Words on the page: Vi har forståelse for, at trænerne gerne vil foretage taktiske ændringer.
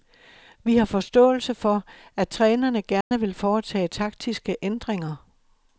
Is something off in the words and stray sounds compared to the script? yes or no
yes